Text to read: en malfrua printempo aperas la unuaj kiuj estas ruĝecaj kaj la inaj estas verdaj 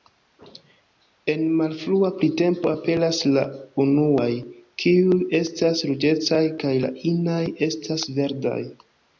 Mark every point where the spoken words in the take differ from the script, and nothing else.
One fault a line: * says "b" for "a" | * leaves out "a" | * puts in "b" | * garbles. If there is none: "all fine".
all fine